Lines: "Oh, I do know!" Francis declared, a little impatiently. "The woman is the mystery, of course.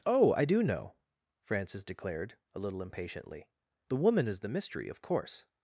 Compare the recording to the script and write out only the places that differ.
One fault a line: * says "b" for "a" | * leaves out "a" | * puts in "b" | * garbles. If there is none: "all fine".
all fine